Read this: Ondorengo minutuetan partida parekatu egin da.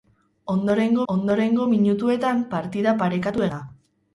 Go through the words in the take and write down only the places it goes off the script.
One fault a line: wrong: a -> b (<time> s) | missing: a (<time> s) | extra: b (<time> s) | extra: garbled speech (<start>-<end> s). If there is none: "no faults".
extra: ondorengo (1.1 s)
missing: egin (3.5 s)